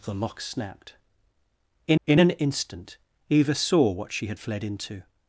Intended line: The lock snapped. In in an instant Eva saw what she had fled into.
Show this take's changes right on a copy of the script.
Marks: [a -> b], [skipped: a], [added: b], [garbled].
The lock snapped. In in an instant Eva saw what she had fled into.